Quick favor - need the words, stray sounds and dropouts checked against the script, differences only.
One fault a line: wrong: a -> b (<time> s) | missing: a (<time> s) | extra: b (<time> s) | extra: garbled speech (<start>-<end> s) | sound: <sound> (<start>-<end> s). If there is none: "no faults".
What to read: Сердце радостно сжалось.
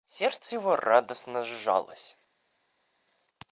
extra: его (0.6 s)